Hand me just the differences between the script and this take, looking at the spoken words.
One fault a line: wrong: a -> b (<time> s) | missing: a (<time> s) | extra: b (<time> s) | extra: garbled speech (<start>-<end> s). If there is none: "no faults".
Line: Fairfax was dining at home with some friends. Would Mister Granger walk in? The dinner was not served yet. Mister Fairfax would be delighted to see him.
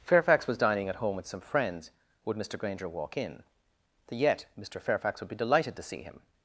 missing: dinner was not served (4.2 s)